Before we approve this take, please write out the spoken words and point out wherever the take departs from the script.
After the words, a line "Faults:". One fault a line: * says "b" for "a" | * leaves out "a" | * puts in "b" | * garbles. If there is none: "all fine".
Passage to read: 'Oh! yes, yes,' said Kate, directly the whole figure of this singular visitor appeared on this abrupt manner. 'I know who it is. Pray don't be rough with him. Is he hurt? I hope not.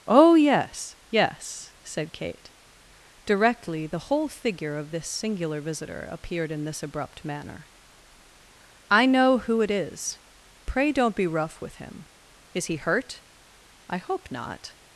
'Oh! yes, yes,' said Kate, directly the whole figure of this singular visitor appeared in this abrupt manner. 'I know who it is. Pray don't be rough with him. Is he hurt? I hope not.
Faults:
* says "in" for "on"